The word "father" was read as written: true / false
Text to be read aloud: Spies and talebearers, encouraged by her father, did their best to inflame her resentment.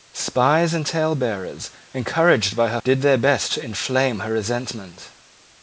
false